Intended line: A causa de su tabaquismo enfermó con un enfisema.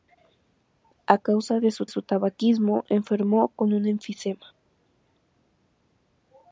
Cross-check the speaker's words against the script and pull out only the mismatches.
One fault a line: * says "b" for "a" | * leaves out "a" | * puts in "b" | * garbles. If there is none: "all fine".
* puts in "su"